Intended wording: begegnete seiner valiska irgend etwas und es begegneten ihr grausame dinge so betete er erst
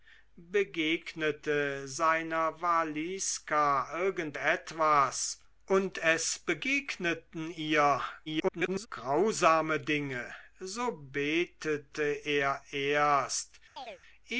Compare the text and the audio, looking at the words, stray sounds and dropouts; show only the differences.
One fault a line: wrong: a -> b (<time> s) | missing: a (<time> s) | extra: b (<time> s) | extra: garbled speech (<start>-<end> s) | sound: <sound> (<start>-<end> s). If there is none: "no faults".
extra: garbled speech (8.3-8.9 s)
sound: chirp (13.8-14.0 s)